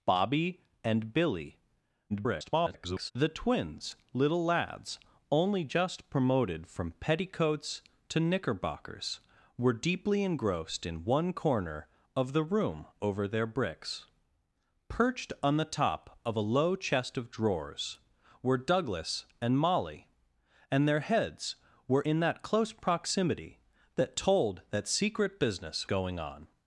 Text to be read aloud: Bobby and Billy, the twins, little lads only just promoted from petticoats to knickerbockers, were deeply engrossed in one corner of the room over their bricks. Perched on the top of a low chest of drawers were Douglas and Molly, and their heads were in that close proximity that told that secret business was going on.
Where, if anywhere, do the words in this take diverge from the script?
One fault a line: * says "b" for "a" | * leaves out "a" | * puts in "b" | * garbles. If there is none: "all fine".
* garbles
* leaves out "was"